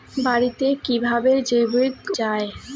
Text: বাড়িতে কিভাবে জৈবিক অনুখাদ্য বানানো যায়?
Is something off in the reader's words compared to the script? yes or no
yes